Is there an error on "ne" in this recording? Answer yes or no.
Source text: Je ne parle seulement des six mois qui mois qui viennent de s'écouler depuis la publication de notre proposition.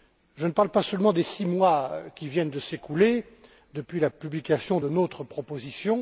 no